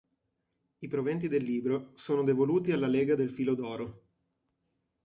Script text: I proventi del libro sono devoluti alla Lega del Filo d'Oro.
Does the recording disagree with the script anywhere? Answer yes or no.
no